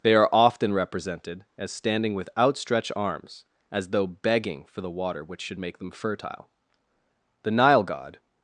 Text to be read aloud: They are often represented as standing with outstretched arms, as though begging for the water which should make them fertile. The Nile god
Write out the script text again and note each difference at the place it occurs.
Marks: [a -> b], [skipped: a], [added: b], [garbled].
They are often represented as standing with outstretched arms, as though begging for the water which should make them fertile. The Nile god